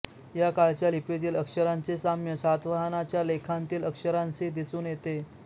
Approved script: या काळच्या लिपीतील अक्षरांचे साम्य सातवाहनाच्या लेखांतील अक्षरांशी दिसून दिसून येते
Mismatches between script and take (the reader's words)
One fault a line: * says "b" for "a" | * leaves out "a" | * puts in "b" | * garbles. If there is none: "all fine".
* leaves out "दिसून"